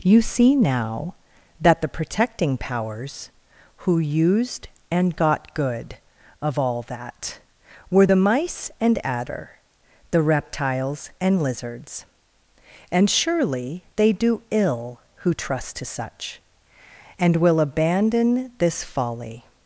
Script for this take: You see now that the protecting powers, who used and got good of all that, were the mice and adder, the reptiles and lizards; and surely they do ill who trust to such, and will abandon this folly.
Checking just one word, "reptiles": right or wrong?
right